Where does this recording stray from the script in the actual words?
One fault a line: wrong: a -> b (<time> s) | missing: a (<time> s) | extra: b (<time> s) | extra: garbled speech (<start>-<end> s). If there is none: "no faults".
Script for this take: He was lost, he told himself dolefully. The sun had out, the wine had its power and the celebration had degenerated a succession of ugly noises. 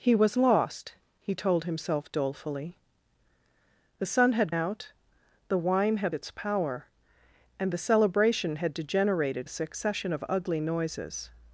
no faults